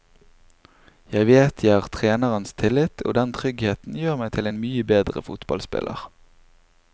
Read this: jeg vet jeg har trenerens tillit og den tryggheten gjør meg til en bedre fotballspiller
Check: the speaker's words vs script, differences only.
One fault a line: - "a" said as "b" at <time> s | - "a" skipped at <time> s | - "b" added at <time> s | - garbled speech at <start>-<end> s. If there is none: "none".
- "mye" added at 4.7 s